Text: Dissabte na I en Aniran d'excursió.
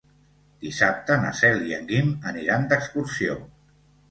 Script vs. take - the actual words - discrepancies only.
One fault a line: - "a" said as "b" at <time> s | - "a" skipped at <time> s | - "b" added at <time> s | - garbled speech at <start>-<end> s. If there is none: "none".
- "Cel" added at 1.4 s
- "Guim" added at 1.9 s